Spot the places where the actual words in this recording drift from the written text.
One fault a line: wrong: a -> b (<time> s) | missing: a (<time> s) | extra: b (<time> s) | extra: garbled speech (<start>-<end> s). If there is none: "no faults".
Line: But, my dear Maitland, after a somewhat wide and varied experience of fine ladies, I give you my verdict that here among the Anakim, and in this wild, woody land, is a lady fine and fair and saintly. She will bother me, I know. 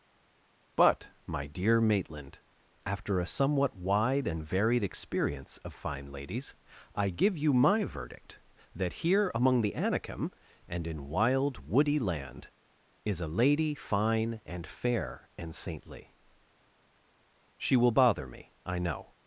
missing: this (11.1 s)